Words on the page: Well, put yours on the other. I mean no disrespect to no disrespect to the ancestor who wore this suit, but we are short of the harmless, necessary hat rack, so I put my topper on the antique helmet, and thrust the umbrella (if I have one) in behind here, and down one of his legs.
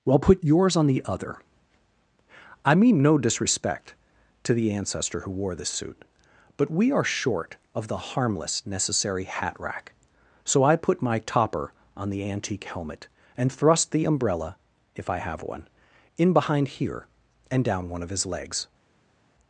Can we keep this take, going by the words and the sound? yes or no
no